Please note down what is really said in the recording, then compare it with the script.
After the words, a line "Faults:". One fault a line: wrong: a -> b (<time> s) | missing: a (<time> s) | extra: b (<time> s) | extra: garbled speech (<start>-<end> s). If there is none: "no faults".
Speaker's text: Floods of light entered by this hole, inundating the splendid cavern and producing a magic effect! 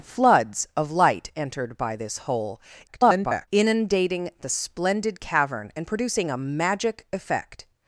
Floods of light entered by this hole, [garbled] inundating the splendid cavern and producing a magic effect!
Faults:
extra: garbled speech (2.9-3.5 s)